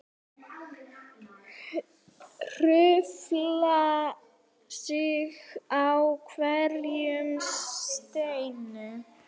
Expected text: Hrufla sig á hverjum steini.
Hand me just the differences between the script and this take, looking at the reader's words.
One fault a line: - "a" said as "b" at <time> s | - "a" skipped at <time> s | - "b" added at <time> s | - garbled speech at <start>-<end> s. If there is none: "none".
none